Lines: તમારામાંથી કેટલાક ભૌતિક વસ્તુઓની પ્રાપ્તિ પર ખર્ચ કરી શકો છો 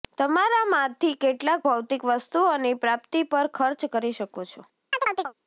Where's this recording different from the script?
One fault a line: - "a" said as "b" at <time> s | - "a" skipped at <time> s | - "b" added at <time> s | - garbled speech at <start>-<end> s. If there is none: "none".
none